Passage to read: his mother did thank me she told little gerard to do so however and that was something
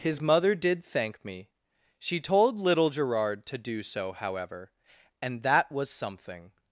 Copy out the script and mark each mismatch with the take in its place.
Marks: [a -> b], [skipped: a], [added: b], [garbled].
his mother did thank me she told little gerard to do so however and that was something